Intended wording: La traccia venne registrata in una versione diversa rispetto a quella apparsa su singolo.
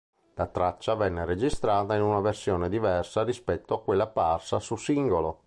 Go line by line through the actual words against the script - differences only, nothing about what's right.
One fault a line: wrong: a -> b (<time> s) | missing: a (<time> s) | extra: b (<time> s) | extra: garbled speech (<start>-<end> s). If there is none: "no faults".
no faults